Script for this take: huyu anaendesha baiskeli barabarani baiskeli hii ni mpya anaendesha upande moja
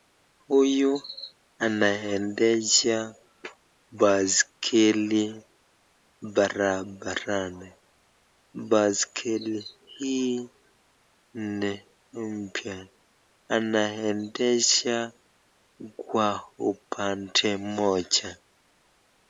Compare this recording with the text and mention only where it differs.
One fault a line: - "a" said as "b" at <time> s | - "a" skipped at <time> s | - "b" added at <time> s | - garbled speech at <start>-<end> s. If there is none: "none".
- "kwa" added at 16.0 s